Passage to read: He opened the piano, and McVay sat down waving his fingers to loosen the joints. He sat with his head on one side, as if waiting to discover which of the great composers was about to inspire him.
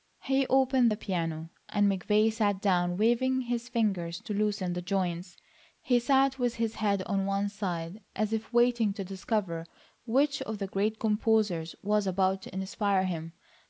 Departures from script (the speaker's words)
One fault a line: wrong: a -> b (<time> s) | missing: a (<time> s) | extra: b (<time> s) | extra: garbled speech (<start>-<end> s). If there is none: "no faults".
no faults